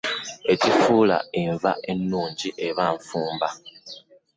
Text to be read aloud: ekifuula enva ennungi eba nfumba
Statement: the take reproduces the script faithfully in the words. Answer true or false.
true